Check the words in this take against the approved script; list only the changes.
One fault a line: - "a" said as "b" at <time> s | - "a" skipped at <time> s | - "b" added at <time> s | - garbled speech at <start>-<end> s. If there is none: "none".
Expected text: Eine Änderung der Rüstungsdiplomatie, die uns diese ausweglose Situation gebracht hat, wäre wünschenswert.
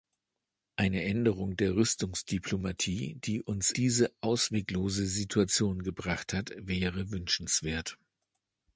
none